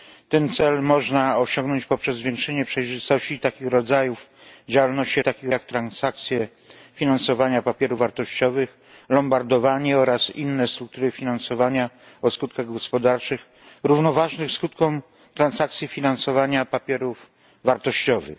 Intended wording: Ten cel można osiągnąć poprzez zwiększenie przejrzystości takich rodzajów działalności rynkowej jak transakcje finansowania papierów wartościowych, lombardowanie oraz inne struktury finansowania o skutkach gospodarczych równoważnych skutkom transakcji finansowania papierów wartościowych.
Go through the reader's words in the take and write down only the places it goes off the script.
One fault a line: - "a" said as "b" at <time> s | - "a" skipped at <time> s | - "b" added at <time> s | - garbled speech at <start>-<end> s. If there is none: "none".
- "rynkowej" said as "takich" at 5.2 s